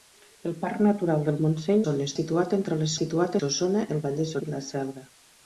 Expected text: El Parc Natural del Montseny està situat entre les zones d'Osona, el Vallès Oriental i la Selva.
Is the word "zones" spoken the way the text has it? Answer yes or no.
no